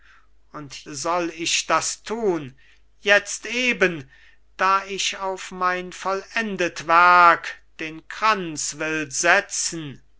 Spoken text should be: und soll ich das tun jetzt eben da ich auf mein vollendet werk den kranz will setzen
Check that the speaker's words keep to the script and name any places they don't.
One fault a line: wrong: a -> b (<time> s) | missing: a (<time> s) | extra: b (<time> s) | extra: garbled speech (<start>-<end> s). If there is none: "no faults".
no faults